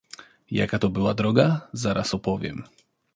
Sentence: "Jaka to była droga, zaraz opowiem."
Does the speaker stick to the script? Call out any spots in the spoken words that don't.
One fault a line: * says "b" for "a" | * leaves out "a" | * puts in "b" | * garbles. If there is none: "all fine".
all fine